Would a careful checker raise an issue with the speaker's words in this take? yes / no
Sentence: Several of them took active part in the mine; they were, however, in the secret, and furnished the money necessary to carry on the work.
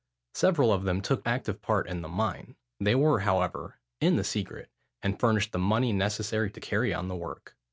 no